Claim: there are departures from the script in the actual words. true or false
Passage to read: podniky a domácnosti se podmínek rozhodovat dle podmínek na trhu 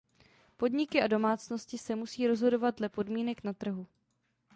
true